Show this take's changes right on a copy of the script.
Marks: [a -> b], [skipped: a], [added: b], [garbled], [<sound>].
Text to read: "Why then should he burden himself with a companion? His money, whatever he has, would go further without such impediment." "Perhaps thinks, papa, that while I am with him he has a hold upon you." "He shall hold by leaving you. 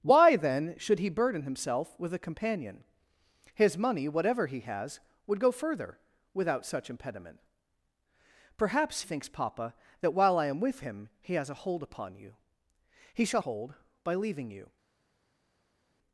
"Why then should he burden himself with a companion? His money, whatever he has, would go further without such impediment." "Perhaps thinks, papa, that while I am with him he has a hold upon you." "He shall hold by leaving you.